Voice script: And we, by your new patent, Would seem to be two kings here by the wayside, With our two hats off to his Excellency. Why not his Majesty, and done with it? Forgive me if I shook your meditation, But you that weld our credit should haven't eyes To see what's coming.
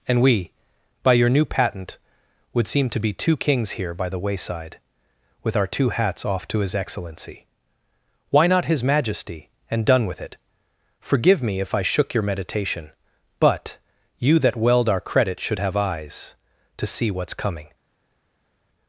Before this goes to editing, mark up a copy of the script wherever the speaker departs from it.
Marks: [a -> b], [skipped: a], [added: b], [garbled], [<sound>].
And we, by your new patent, Would seem to be two kings here by the wayside, With our two hats off to his Excellency. Why not his Majesty, and done with it? Forgive me if I shook your meditation, But you that weld our credit should [haven't -> have] eyes To see what's coming.